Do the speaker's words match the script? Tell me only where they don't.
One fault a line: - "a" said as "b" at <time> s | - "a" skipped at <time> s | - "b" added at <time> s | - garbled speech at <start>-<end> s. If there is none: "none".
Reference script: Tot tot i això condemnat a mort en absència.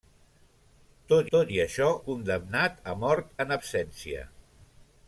none